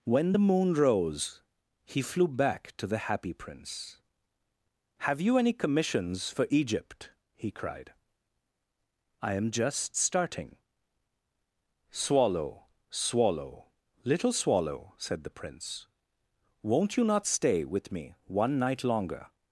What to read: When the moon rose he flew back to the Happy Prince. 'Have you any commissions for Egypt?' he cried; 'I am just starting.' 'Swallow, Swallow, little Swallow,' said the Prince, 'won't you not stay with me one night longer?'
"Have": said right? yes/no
yes